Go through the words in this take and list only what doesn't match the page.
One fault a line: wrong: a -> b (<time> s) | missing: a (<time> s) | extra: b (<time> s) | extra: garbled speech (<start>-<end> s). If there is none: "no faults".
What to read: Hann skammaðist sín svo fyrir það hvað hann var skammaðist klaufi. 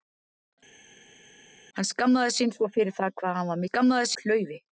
no faults